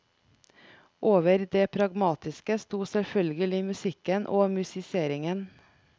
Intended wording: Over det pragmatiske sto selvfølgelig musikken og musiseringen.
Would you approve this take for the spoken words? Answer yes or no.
yes